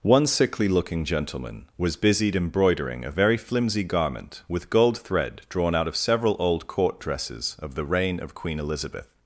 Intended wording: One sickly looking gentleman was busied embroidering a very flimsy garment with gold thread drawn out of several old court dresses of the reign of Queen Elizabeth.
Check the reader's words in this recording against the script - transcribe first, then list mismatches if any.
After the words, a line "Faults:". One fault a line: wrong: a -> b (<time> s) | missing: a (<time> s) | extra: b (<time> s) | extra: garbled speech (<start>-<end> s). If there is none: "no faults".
One sickly looking gentleman was busied embroidering a very flimsy garment with gold thread drawn out of several old court dresses of the reign of Queen Elizabeth.
Faults:
no faults